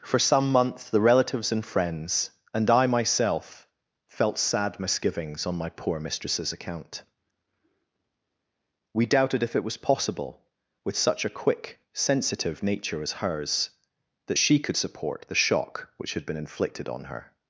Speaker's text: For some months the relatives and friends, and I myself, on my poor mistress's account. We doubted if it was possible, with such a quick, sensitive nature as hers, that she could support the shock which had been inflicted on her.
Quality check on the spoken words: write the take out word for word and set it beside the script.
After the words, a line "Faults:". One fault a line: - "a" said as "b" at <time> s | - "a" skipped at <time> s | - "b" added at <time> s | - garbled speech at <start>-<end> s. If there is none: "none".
For some months the relatives and friends, and I myself, felt sad misgivings on my poor mistress's account. We doubted if it was possible, with such a quick, sensitive nature as hers, that she could support the shock which had been inflicted on her.
Faults:
- "felt sad misgivings" added at 4.1 s